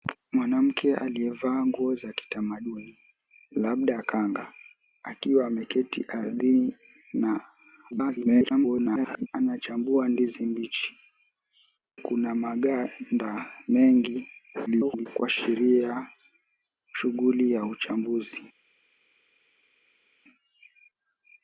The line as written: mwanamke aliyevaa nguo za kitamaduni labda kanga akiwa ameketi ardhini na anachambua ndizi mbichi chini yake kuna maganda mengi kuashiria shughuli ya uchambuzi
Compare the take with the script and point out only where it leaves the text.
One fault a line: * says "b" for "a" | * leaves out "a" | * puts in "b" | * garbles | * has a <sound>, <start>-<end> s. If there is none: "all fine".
* garbles
* leaves out "chini yake"
* garbles